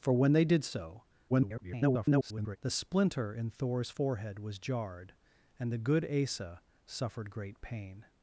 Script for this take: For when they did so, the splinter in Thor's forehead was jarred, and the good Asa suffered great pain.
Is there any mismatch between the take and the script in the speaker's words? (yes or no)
yes